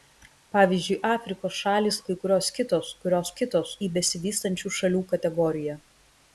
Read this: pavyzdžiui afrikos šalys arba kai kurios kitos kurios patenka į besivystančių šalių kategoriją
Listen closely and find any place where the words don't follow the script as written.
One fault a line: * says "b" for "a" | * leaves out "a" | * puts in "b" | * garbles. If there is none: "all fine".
* leaves out "arba"
* says "kitos" for "patenka"